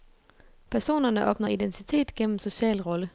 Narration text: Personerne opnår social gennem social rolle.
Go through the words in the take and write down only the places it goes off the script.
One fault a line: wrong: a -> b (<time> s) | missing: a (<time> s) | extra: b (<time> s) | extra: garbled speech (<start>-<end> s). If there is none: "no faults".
wrong: social -> identitet (1.5 s)